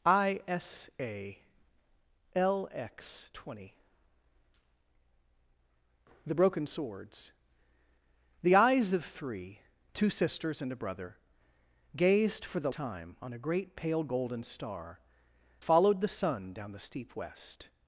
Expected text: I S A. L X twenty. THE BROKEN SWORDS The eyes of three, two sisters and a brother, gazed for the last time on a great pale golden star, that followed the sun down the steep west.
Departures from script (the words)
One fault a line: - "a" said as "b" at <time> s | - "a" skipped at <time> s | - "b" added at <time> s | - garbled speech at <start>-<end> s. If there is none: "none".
- "last" skipped at 12.7 s
- "that" skipped at 15.0 s